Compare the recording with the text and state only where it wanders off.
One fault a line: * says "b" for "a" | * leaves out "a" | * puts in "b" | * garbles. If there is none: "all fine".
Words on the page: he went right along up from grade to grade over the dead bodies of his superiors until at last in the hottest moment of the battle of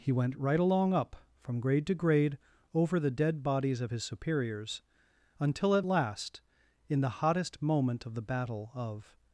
all fine